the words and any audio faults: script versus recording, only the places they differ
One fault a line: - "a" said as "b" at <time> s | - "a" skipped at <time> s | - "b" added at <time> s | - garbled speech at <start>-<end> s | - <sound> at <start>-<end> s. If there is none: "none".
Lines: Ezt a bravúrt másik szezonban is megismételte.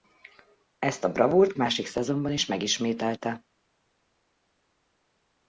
none